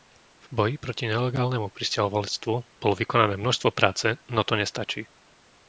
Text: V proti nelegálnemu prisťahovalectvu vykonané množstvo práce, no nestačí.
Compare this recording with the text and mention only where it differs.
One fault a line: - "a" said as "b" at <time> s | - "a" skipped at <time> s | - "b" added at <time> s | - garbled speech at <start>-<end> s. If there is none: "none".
- "boji" added at 0.5 s
- "bolo" added at 2.8 s
- "to" added at 4.4 s